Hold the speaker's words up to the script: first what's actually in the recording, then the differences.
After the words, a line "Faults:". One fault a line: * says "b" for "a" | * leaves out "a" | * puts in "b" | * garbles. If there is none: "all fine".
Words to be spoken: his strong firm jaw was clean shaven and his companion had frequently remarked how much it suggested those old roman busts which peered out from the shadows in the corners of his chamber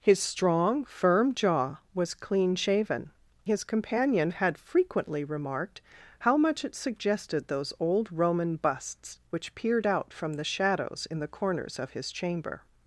his strong firm jaw was clean shaven his companion had frequently remarked how much it suggested those old roman busts which peered out from the shadows in the corners of his chamber
Faults:
* leaves out "and"